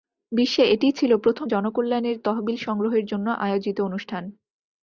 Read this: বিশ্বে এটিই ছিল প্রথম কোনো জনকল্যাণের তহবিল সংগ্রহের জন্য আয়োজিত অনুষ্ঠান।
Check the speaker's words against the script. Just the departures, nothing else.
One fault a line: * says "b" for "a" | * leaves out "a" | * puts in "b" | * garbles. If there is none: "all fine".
* leaves out "কোনো"